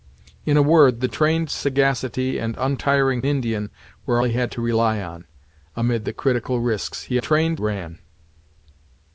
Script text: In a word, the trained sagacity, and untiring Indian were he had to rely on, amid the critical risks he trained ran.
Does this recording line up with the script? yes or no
yes